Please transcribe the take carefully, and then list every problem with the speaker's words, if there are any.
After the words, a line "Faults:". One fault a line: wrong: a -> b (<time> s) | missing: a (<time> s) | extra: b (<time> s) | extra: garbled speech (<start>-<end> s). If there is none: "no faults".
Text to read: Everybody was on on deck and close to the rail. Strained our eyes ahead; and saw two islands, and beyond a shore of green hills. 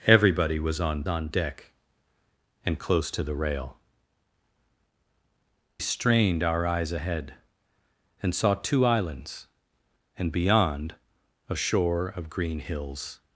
Everybody was on on deck and close to the rail. Strained our eyes ahead; and saw two islands, and beyond a shore of green hills.
Faults:
no faults